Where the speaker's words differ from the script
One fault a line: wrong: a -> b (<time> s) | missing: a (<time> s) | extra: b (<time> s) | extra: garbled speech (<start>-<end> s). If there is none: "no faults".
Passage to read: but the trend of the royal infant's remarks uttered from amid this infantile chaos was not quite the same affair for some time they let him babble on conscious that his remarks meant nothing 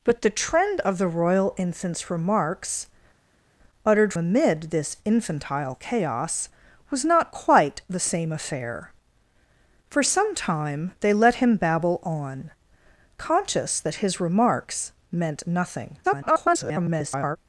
missing: from (4.1 s)
extra: garbled speech (16.0-17.4 s)